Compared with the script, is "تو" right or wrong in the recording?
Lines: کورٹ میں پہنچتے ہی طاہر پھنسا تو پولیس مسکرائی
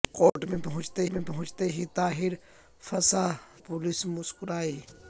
wrong